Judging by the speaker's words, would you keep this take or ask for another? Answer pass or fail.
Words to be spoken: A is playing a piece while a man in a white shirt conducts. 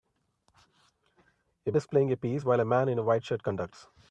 pass